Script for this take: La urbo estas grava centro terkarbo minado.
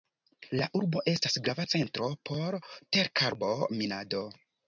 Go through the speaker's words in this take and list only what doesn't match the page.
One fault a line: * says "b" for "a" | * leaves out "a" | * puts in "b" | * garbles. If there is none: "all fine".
* puts in "por"